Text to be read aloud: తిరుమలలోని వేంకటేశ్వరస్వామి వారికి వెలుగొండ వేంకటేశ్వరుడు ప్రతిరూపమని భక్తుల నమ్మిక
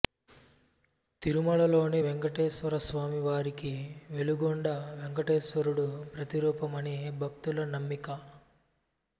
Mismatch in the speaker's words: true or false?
false